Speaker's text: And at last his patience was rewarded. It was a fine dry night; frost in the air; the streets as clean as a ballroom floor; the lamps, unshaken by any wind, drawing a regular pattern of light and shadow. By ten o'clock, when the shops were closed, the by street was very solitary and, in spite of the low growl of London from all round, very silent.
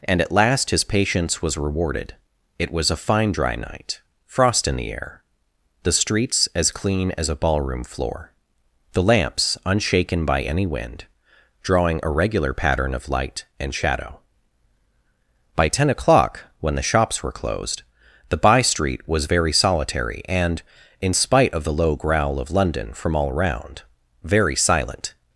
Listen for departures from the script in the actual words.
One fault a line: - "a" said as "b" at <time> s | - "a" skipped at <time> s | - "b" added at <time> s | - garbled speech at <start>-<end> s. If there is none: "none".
none